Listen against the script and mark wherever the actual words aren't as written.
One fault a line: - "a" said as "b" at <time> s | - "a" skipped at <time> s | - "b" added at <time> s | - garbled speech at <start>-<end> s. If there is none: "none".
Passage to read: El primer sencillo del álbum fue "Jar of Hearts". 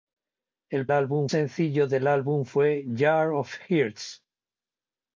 - "primer" said as "álbum" at 0.9 s